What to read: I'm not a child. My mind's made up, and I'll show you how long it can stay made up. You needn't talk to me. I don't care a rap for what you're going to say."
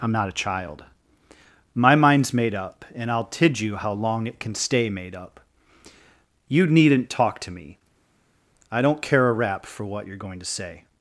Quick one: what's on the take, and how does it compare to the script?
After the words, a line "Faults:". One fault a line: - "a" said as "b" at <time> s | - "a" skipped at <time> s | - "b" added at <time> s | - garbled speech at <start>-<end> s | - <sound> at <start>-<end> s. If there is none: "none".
I'm not a child. My mind's made up, and I'll tid you how long it can stay made up. You needn't talk to me. I don't care a rap for what you're going to say."
Faults:
- "show" said as "tid" at 3.2 s